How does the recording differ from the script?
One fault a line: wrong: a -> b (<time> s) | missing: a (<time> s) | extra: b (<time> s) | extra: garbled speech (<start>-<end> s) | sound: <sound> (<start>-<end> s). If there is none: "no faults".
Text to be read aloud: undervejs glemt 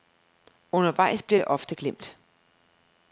extra: bliver det ofte (1.2 s)